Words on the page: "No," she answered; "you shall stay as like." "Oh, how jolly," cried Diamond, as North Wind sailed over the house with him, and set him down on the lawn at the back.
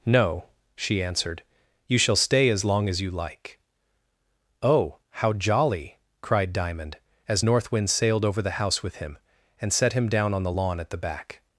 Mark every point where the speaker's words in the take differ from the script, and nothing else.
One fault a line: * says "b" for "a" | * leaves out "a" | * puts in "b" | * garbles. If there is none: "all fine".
* puts in "long as you"